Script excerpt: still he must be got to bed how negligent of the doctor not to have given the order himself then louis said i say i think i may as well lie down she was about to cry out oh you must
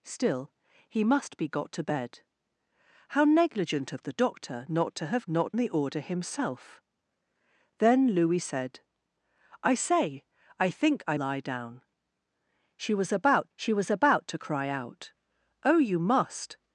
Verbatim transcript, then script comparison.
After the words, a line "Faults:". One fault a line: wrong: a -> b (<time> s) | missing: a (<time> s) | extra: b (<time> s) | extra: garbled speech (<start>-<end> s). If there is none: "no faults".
still he must be got to bed how negligent of the doctor not to have not the order himself then louis said i say i think i lie down she was about she was about to cry out oh you must
Faults:
wrong: given -> not (5.3 s)
wrong: may as well lie down -> lie down she was about (11.1 s)